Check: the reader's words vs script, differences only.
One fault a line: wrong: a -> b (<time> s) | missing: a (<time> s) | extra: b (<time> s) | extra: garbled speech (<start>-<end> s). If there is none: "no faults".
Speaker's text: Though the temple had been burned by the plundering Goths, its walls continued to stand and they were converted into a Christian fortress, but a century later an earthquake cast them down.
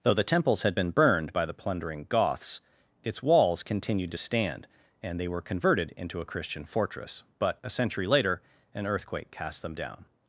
wrong: temple -> temples (0.2 s)